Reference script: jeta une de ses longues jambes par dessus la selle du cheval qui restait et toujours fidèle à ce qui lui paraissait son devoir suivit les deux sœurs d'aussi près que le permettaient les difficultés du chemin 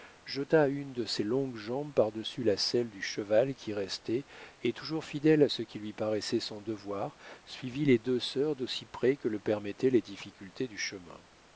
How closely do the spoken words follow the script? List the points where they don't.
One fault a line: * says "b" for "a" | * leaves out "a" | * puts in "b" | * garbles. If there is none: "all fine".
all fine